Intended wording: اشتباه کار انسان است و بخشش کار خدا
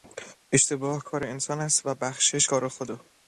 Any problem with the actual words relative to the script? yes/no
no